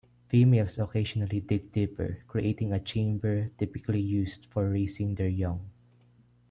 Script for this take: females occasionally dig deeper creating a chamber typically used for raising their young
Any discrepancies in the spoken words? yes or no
no